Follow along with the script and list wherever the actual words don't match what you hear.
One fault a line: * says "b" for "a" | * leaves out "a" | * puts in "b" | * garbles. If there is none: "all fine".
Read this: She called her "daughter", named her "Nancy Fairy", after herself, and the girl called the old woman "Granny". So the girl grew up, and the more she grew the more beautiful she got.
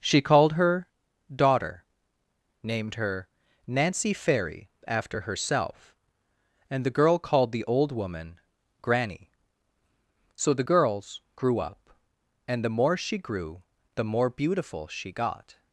* says "girls" for "girl"